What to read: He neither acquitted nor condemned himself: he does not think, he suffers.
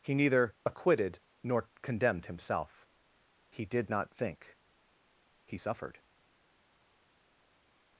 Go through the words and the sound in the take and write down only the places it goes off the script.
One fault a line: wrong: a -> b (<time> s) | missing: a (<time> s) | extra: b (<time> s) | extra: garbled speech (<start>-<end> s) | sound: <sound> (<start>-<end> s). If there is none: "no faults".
wrong: does -> did (3.7 s)
wrong: suffers -> suffered (5.5 s)